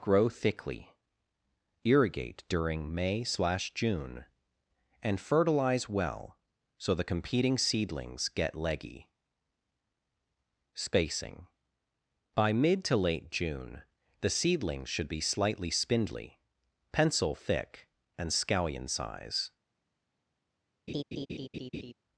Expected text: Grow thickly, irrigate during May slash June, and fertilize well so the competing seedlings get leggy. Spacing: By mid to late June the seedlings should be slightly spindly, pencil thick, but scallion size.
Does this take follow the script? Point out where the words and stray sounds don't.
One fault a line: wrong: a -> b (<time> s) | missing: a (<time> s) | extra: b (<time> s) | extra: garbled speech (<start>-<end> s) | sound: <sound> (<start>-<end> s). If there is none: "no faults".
wrong: but -> and (18.2 s)
sound: laugh (20.9-21.9 s)